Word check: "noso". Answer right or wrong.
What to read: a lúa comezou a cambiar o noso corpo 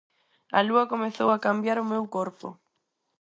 wrong